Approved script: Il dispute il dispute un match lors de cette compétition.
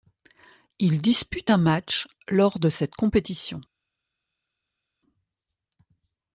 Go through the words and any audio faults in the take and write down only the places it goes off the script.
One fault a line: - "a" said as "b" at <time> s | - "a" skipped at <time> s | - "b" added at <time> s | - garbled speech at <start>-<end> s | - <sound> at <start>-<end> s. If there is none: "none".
- "il dispute" skipped at 1.5 s